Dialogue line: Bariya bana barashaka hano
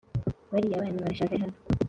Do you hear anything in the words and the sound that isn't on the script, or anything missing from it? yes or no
no